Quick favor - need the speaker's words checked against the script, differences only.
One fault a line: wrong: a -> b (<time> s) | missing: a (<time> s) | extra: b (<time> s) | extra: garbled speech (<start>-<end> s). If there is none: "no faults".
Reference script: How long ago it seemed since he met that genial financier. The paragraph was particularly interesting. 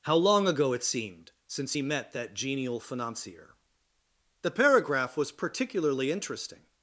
no faults